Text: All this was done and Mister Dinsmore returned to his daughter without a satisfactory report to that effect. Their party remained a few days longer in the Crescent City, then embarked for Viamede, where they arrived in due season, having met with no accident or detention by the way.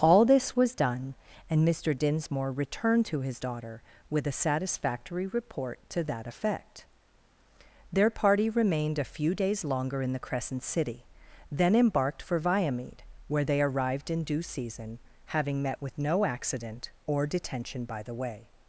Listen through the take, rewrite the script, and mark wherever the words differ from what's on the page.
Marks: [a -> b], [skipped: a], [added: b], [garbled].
All this was done and Mister Dinsmore returned to his daughter [without -> with] a satisfactory report to that effect. Their party remained a few days longer in the Crescent City, then embarked for Viamede, where they arrived in due season, having met with no accident or detention by the way.